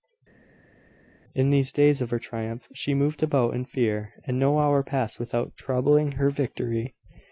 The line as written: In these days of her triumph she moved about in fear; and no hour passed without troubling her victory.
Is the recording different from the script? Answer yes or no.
no